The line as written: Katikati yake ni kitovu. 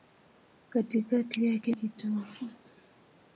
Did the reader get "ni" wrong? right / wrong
wrong